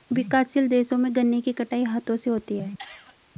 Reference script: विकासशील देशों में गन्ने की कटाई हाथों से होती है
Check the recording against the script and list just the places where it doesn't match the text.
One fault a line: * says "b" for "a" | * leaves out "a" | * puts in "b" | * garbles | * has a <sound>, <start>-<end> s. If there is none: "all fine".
* has a cough, 2.8-3.2 s